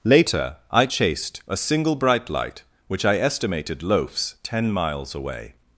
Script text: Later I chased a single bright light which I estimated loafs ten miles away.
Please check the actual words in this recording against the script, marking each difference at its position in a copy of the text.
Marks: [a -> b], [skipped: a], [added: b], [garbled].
Later I chased a single bright light which I estimated loafs ten miles away.